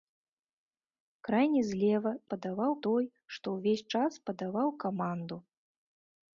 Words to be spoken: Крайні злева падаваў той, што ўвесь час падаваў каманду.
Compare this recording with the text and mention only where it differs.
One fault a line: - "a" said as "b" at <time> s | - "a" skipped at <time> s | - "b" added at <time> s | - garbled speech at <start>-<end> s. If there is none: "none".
none